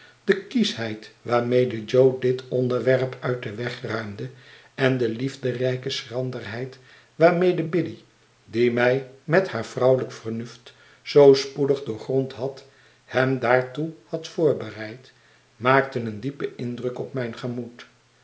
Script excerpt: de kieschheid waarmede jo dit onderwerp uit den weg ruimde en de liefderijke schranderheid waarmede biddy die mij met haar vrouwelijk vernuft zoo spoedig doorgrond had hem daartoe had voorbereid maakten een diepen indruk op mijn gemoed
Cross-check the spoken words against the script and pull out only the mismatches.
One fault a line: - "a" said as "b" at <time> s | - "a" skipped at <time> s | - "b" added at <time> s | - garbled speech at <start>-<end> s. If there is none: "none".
none